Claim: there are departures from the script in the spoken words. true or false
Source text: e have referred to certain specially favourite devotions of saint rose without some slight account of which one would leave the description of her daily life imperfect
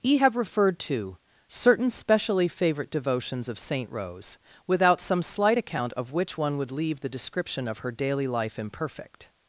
false